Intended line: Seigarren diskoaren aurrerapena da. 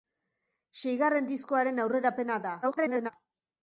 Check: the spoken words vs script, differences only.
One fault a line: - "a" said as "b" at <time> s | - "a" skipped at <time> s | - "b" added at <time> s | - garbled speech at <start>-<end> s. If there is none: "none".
- garbled speech at 2.6-3.1 s